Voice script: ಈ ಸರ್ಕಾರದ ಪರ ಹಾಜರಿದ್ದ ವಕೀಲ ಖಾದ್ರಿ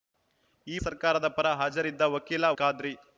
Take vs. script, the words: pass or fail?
pass